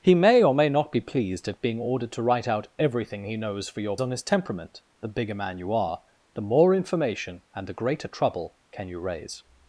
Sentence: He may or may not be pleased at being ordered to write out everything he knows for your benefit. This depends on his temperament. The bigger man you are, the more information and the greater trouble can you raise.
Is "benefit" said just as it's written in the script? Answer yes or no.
no